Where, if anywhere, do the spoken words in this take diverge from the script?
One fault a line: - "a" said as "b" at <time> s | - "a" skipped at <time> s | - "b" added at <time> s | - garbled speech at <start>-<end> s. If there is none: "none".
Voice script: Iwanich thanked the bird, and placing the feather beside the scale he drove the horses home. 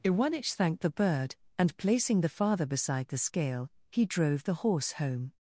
- "feather" said as "father" at 2.3 s
- "horses" said as "horse" at 4.5 s